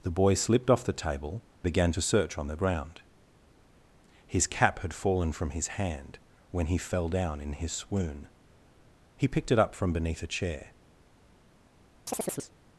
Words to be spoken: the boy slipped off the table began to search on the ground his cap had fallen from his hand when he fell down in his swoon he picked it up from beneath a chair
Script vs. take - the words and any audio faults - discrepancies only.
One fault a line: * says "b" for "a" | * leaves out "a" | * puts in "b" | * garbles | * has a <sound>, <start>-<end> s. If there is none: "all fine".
* has a chirp, 12.1-12.5 s